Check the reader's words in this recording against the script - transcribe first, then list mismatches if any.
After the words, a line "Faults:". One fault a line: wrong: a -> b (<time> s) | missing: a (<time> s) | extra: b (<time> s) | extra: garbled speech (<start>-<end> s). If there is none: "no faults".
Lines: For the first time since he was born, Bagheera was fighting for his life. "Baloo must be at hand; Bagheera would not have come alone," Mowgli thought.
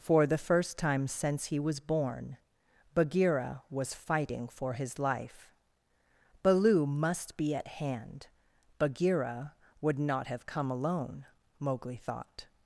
For the first time since he was born, Bagheera was fighting for his life. "Baloo must be at hand; Bagheera would not have come alone," Mowgli thought.
Faults:
no faults